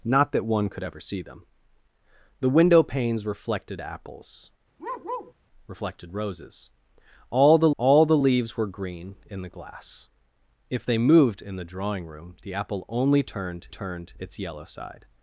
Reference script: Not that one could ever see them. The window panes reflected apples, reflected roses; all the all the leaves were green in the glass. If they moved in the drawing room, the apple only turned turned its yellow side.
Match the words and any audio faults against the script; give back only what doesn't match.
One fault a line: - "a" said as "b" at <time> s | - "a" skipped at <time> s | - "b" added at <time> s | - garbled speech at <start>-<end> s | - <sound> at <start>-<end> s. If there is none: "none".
- bark at 4.8-5.3 s